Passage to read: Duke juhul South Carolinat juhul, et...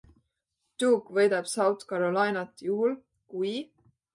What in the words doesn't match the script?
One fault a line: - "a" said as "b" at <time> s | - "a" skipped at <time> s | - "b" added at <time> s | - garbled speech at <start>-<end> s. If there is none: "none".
- "juhul" said as "võidab" at 1.2 s
- "et" said as "kui" at 3.4 s